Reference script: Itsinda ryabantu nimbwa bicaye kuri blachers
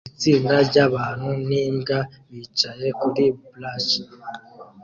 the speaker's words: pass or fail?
pass